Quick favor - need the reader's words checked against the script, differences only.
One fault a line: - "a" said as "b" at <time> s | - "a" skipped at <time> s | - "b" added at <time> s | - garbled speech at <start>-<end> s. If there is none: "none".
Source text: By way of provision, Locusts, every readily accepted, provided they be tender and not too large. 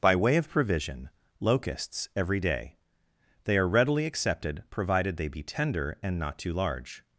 - "day They are" added at 2.4 s